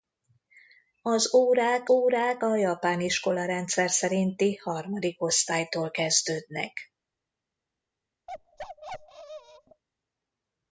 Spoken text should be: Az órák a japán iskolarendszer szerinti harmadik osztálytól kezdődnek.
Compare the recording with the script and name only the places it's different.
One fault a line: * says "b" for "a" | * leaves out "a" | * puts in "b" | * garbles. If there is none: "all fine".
* puts in "órák"